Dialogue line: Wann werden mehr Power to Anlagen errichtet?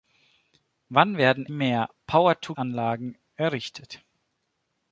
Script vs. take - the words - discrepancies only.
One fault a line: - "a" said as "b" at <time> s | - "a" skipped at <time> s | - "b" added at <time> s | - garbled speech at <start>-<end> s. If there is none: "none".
none